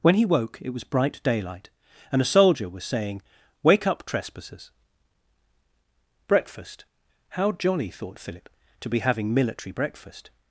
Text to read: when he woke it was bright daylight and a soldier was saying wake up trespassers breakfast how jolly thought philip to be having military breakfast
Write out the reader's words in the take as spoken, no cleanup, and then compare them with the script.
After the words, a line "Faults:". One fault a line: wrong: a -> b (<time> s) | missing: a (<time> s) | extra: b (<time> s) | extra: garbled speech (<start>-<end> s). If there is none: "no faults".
when he woke it was bright daylight and a soldier was saying wake up trespassers breakfast how jolly thought philip to be having military breakfast
Faults:
no faults